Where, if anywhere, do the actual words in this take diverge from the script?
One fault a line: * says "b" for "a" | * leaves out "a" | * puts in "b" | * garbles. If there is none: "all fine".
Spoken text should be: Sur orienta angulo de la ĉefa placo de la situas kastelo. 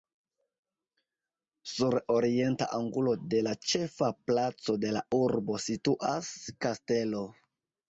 * puts in "urbo"